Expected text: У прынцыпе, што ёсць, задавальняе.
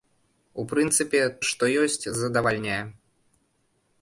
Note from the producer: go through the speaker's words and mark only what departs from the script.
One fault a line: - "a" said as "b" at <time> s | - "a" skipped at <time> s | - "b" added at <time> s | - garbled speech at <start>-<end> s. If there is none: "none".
none